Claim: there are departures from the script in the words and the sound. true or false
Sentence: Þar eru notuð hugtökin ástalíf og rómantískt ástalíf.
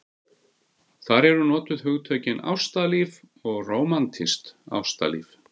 false